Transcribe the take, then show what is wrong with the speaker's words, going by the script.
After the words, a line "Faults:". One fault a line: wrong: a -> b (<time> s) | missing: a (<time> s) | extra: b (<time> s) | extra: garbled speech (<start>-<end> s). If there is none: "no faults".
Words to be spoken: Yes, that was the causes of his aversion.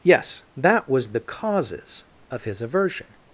Yes, that was the causes of his aversion.
Faults:
no faults